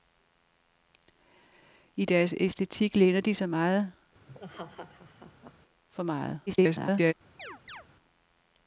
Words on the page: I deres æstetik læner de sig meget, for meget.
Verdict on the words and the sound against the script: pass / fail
fail